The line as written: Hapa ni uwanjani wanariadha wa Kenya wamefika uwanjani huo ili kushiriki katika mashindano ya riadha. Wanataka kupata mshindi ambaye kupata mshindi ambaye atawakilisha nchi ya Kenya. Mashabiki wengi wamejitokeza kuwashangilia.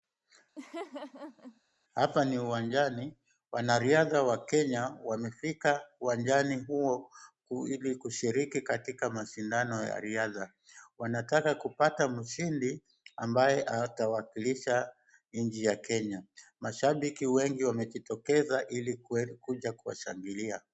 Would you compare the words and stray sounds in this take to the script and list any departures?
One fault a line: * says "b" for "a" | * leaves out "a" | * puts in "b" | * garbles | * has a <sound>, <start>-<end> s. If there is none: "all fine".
* has a laugh, 0.6-1.6 s
* leaves out "kupata mshindi ambaye"
* puts in "ili kuja"